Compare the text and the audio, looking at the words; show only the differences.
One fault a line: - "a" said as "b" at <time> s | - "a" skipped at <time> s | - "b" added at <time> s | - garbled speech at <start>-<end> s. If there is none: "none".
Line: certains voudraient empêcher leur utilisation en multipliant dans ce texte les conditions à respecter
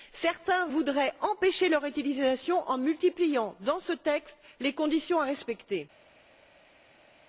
none